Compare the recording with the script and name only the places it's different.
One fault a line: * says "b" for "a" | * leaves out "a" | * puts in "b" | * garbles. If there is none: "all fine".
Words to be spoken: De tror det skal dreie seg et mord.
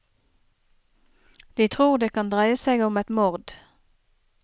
* says "kan" for "skal"
* puts in "om"